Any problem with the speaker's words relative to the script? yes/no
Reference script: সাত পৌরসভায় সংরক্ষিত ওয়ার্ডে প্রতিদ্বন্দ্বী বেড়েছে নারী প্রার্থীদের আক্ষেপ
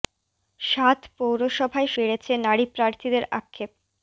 yes